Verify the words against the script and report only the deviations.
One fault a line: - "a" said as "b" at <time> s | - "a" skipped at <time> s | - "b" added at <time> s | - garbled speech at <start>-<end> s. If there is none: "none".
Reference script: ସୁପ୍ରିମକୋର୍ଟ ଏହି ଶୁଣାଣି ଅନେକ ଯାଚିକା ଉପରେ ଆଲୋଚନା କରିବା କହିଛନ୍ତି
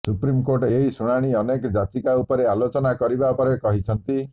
- "ପରେ" added at 3.4 s